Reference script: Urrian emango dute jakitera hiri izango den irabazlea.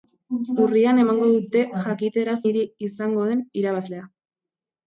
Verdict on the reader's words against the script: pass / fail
pass